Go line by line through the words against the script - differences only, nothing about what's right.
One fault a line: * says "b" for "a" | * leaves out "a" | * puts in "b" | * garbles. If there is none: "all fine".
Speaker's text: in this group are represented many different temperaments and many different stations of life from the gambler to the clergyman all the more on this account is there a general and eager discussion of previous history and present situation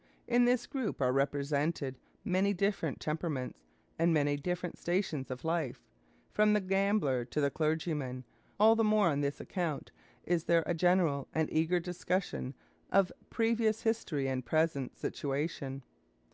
all fine